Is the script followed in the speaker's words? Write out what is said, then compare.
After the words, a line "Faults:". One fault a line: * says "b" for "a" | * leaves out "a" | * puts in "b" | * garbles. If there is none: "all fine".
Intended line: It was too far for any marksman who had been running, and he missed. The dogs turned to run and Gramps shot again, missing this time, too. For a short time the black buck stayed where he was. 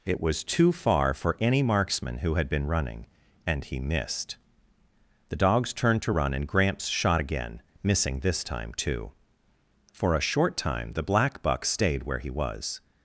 It was too far for any marksman who had been running, and he missed. The dogs turned to run and Gramps shot again, missing this time, too. For a short time the black buck stayed where he was.
Faults:
all fine